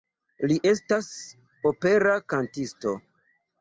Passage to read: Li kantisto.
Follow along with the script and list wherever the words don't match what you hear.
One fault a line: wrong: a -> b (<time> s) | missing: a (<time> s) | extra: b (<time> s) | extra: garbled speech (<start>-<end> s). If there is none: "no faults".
extra: estas opera (0.7 s)